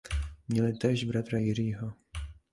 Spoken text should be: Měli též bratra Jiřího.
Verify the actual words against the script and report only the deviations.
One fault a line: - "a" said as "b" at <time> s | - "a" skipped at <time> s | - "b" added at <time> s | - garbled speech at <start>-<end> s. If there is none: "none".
none